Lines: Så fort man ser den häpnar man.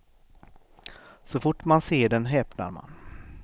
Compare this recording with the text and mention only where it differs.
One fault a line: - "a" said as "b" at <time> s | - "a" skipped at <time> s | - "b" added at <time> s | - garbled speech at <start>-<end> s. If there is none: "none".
none